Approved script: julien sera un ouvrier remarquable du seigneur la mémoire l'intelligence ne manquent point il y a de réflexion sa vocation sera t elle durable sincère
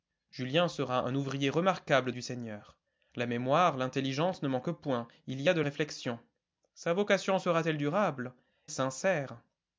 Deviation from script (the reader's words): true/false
false